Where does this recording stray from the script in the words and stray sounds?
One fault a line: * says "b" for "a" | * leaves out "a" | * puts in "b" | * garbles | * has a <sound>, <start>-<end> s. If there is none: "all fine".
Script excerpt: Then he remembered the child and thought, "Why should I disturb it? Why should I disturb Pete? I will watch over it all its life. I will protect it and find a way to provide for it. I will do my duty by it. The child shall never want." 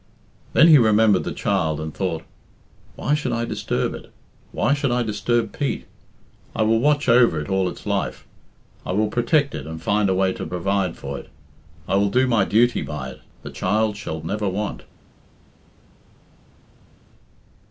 all fine